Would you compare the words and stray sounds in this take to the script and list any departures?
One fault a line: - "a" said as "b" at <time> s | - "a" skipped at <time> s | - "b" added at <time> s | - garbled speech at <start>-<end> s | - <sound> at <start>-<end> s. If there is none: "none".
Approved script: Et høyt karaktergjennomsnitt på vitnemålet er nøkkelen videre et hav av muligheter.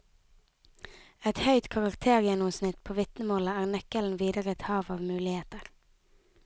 none